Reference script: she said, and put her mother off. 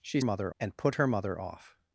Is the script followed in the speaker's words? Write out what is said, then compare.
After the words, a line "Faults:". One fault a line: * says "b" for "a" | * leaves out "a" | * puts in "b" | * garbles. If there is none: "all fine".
she mother, and put her mother off.
Faults:
* says "mother" for "said"